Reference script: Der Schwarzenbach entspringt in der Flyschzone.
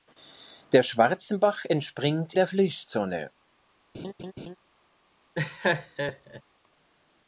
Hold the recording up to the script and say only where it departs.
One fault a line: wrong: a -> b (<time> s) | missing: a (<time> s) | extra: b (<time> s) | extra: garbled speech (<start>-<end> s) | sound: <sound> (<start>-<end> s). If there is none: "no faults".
missing: in (2.3 s)
sound: laugh (3.9-4.6 s)
sound: laugh (5.3-6.4 s)